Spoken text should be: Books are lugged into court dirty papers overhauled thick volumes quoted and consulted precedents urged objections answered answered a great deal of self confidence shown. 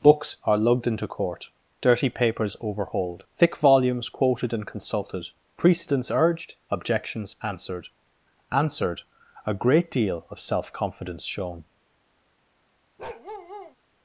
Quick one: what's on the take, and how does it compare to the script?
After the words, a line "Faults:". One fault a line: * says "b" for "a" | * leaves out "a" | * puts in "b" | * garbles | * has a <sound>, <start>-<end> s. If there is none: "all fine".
Books are lugged into court dirty papers overhauled thick volumes quoted and consulted precedents urged objections answered answered a great deal of self confidence shown.
Faults:
* has a bark, 13.0-13.8 s